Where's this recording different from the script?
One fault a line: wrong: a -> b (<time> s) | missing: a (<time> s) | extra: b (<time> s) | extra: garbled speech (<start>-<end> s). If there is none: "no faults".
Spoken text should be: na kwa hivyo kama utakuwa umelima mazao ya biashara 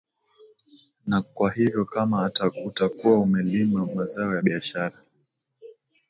no faults